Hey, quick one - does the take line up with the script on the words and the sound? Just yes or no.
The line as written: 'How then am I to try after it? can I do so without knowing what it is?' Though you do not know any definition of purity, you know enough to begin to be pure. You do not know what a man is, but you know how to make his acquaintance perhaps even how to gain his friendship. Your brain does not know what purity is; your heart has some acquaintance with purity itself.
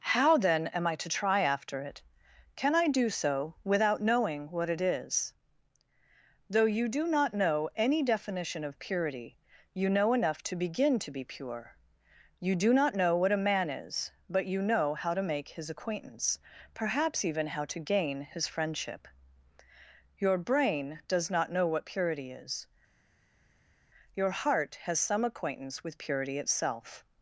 yes